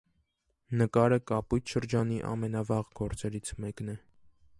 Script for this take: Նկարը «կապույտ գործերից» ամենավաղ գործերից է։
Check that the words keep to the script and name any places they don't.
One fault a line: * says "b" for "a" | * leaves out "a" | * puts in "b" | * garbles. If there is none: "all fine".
* says "շրջանի" for "գործերից"
* puts in "մեկն"